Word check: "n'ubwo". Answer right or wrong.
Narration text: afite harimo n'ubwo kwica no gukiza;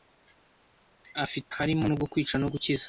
right